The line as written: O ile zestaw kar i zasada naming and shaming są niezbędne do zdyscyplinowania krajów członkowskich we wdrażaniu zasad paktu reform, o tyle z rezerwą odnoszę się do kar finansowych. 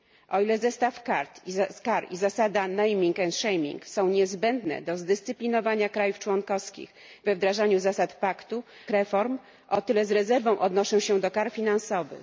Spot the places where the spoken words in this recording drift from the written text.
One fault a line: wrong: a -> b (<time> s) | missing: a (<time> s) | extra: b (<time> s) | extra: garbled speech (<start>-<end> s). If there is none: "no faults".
no faults